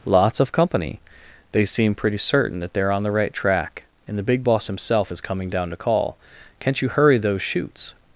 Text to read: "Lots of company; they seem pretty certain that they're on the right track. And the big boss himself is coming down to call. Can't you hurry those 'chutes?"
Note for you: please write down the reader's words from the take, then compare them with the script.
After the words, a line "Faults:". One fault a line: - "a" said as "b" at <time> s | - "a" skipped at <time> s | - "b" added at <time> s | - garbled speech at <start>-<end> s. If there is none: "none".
"Lots of company; they seem pretty certain that they're on the right track. And the big boss himself is coming down to call. Can't you hurry those 'chutes?"
Faults:
none